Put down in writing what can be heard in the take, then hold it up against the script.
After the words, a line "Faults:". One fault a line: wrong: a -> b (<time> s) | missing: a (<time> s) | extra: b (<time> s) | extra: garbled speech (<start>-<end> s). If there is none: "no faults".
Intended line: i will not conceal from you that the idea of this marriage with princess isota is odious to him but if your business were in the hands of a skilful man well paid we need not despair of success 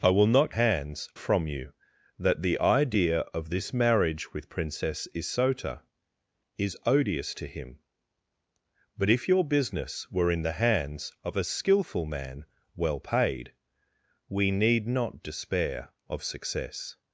i will not hands from you that the idea of this marriage with princess isota is odious to him but if your business were in the hands of a skilful man well paid we need not despair of success
Faults:
wrong: conceal -> hands (0.5 s)